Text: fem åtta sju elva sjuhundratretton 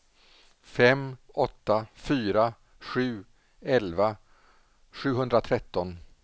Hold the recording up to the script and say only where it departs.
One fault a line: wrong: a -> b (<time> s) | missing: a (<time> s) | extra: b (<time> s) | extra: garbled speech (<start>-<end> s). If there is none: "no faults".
extra: fyra (1.9 s)